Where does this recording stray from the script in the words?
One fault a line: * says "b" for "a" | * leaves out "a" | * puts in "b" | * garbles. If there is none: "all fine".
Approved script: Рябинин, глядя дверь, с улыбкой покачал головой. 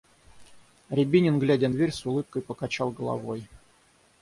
all fine